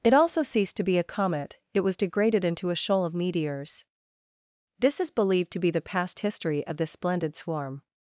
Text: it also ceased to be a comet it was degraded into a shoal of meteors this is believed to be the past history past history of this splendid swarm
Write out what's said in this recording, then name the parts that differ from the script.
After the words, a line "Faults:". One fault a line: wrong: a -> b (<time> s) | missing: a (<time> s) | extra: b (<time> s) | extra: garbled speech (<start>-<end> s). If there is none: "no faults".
it also ceased to be a comet it was degraded into a shoal of meteors this is believed to be the past history of this splendid swarm
Faults:
missing: past history (6.7 s)